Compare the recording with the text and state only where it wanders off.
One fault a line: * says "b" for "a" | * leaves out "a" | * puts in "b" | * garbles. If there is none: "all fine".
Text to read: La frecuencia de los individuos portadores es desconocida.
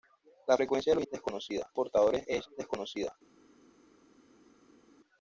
* says "desconocida" for "individuos"